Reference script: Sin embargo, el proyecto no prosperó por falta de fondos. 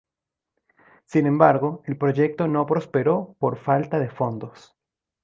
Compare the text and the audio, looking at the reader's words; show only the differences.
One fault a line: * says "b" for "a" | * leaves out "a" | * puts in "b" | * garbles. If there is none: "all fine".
all fine